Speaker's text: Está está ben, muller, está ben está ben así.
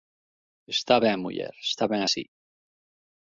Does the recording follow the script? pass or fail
fail